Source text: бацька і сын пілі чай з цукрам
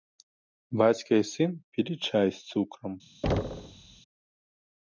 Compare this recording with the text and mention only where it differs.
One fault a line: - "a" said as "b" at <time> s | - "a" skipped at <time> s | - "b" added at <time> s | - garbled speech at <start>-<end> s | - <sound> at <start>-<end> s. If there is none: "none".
- thud at 3.2-4.0 s